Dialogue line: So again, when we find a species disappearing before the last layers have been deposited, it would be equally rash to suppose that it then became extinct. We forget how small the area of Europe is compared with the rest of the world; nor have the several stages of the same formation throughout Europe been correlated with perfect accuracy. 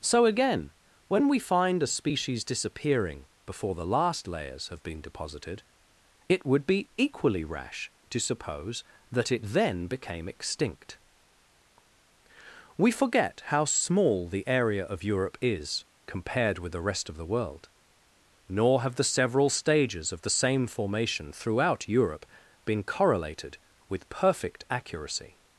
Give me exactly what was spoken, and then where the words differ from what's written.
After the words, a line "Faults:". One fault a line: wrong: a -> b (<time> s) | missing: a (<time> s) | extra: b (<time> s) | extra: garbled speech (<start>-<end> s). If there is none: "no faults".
So again, when we find a species disappearing before the last layers have been deposited, it would be equally rash to suppose that it then became extinct. We forget how small the area of Europe is compared with the rest of the world; nor have the several stages of the same formation throughout Europe been correlated with perfect accuracy.
Faults:
no faults